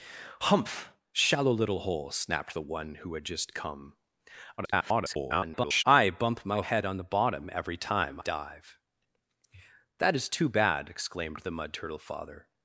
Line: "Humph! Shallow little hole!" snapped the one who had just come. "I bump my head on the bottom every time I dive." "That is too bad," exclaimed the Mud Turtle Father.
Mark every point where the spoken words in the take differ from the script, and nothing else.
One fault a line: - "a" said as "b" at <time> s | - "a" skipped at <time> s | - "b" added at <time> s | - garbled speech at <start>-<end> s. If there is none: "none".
- garbled speech at 4.6-5.8 s
- "I" skipped at 8.2 s